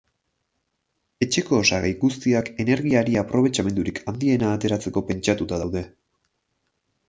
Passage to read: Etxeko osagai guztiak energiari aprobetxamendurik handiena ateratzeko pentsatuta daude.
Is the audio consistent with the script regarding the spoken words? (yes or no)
yes